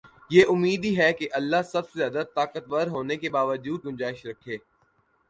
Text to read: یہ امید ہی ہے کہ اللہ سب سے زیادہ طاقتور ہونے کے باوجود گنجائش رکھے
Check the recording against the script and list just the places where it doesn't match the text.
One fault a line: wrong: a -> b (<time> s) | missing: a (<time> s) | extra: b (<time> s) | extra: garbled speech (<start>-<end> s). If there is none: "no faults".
no faults